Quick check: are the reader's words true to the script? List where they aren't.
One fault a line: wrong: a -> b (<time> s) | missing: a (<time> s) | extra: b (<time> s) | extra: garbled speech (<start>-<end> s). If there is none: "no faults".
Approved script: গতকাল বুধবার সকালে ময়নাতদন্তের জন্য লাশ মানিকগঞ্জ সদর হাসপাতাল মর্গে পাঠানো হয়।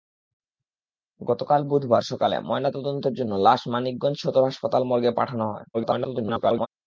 extra: garbled speech (5.7-6.7 s)